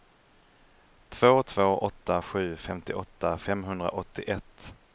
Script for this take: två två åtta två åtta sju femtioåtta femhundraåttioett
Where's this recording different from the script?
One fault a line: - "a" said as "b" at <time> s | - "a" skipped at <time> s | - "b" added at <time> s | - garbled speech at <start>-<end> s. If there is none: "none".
- "två åtta" skipped at 2.2 s